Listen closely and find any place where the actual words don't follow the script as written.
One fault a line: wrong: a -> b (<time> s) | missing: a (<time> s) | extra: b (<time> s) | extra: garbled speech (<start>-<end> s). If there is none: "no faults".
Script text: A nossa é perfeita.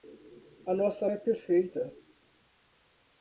no faults